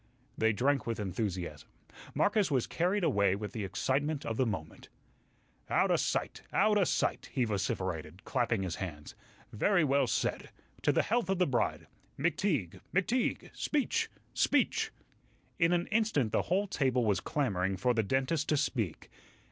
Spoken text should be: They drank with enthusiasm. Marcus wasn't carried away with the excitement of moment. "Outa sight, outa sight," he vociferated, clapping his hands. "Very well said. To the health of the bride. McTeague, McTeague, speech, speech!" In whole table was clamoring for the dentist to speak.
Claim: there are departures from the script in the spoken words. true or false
true